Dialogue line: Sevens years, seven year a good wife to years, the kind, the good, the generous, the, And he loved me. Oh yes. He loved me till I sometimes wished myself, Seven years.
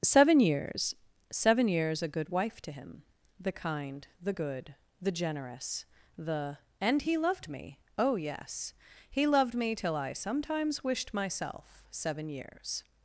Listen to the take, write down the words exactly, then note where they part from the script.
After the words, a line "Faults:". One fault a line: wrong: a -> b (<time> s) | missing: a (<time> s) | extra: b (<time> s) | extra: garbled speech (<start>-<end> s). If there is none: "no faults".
Seven years, seven years a good wife to him, the kind, the good, the generous, the, And he loved me. Oh yes. He loved me till I sometimes wished myself, Seven years.
Faults:
wrong: Sevens -> Seven (0.0 s)
wrong: year -> years (1.7 s)
wrong: years -> him (2.7 s)